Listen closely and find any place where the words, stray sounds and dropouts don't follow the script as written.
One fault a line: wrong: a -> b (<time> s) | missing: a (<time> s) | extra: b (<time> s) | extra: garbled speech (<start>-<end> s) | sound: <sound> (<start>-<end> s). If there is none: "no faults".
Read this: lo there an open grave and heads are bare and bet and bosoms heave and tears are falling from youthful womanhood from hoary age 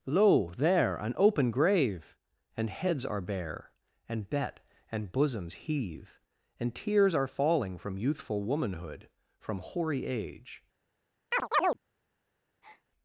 sound: chirp (11.3-11.8 s)
sound: breath (12.6-12.8 s)